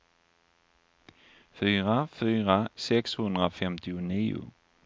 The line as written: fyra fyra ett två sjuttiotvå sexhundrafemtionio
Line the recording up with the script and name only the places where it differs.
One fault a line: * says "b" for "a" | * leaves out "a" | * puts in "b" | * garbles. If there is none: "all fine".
* leaves out "ett två sjuttiotvå"